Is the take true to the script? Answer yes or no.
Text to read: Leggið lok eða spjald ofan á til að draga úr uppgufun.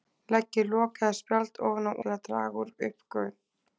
yes